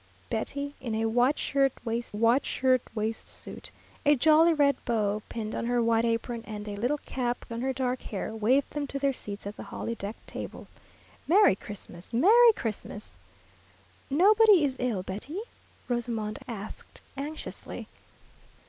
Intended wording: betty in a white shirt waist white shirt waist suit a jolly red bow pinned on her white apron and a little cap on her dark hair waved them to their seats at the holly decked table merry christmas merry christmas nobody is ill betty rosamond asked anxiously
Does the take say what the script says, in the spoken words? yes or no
yes